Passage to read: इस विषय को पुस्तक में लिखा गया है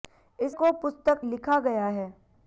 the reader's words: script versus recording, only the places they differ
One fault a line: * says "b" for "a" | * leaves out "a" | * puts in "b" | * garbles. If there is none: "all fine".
* leaves out "विषय"
* leaves out "में"